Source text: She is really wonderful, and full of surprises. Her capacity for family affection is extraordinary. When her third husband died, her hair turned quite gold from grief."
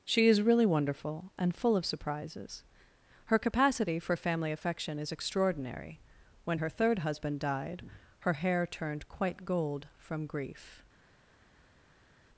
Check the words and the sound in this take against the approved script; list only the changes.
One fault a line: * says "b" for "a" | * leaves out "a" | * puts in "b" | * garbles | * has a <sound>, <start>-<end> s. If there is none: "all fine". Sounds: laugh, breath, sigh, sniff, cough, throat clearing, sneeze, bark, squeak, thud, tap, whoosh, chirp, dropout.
all fine